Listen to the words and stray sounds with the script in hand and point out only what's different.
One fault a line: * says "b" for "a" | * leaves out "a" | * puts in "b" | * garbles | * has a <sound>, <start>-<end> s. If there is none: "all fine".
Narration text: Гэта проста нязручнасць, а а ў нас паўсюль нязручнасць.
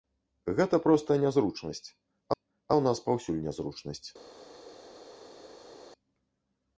all fine